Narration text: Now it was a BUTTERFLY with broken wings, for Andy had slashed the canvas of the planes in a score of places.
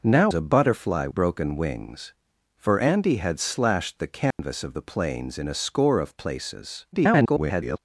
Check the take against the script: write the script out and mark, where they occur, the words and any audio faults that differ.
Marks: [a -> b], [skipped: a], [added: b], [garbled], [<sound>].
Now [skipped: it was] a BUTTERFLY [skipped: with] broken wings, for Andy had slashed the canvas [dropout] of the planes in a score of places. [garbled]